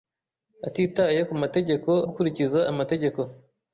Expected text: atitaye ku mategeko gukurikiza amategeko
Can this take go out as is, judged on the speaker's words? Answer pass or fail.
pass